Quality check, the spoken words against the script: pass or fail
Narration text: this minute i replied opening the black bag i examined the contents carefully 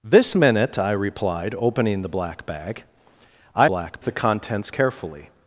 fail